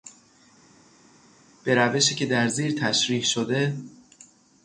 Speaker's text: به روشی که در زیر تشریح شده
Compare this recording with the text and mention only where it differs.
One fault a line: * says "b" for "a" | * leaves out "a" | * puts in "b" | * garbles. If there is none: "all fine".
all fine